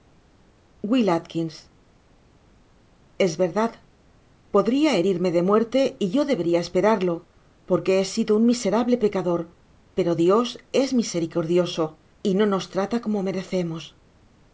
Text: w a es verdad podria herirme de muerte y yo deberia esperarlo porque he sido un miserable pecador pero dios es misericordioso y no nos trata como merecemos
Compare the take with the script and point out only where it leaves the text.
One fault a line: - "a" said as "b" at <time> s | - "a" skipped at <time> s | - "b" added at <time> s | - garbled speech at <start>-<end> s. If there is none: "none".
none